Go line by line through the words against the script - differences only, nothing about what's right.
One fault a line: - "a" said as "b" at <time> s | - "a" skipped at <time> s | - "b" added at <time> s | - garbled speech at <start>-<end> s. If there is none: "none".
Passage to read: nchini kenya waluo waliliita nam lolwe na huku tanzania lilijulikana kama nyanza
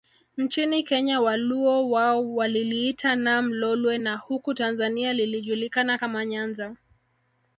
- "wao" added at 1.9 s